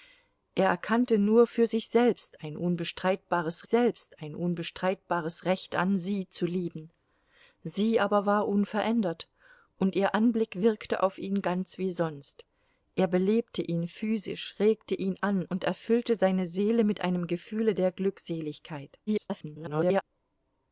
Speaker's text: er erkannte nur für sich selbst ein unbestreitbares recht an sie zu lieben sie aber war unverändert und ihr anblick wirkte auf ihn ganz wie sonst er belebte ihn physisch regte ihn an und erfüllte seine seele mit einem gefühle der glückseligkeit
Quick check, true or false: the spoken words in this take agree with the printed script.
false